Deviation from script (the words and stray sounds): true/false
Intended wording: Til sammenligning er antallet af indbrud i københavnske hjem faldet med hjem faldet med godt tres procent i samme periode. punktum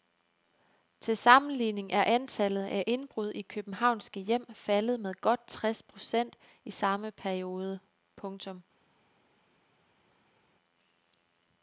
true